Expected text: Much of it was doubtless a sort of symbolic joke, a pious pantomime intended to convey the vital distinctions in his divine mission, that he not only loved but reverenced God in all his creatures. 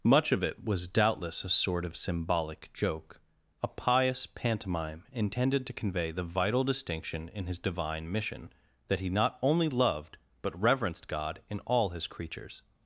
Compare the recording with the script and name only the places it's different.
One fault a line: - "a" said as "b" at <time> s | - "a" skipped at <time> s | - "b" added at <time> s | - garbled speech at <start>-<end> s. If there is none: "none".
- "distinctions" said as "distinction" at 6.6 s